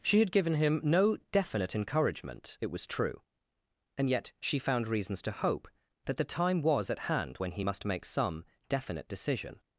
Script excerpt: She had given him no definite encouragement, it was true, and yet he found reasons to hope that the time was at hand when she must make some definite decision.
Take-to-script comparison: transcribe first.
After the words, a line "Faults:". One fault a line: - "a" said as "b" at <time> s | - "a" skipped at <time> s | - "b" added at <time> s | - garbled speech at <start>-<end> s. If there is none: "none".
She had given him no definite encouragement, it was true, and yet she found reasons to hope that the time was at hand when he must make some definite decision.
Faults:
- "he" said as "she" at 4.4 s
- "she" said as "he" at 7.5 s